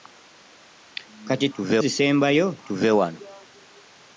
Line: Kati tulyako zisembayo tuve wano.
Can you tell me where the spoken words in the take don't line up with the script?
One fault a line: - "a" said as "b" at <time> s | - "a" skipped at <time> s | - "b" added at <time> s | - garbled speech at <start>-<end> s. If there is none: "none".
- "tulyako" said as "tuve" at 1.5 s